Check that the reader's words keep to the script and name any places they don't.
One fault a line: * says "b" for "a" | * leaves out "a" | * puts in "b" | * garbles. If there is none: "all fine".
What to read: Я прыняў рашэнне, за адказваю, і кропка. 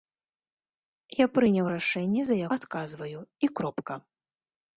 all fine